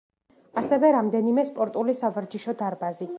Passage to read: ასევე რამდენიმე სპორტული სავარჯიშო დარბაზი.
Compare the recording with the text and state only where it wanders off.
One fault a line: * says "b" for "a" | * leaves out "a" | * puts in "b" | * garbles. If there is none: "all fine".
all fine